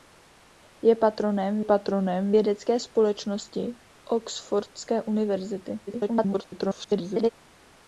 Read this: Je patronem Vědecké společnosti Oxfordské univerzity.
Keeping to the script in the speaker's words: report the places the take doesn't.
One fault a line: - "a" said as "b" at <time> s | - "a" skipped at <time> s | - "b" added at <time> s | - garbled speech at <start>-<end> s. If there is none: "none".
- "patronem" added at 1.6 s
- garbled speech at 5.9-7.3 s